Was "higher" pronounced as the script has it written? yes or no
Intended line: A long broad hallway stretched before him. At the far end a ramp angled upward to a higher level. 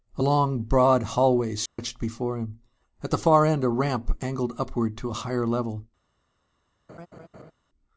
yes